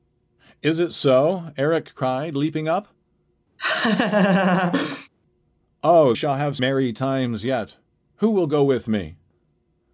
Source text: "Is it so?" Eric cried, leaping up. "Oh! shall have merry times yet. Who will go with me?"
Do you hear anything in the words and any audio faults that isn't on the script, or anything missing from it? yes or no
yes